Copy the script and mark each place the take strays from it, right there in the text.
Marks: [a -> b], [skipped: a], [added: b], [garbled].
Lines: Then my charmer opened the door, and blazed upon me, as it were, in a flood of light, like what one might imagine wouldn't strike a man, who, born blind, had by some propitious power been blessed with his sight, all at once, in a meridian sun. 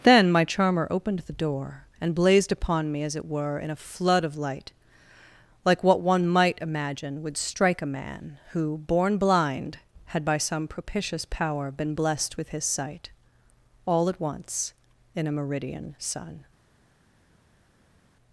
Then my charmer opened the door, and blazed upon me, as it were, in a flood of light, like what one might imagine [wouldn't -> would] strike a man, who, born blind, had by some propitious power been blessed with his sight, all at once, in a meridian sun.